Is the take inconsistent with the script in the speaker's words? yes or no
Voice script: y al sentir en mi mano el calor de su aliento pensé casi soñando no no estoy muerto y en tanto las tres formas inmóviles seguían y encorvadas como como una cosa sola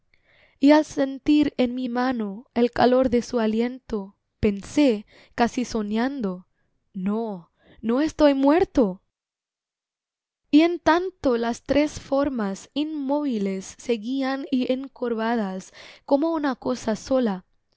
yes